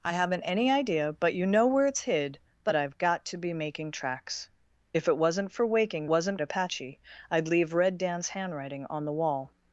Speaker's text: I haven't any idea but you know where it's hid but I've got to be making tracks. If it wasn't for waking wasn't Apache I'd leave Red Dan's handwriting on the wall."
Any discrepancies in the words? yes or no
no